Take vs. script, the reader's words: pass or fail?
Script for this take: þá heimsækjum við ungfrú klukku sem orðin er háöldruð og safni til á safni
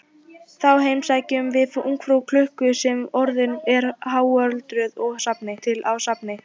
pass